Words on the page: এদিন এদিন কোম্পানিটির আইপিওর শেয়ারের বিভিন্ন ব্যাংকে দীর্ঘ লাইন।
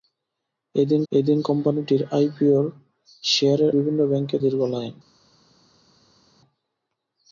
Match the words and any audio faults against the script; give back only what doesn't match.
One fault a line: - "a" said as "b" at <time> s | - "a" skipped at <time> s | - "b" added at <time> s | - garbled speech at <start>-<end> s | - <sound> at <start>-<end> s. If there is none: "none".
none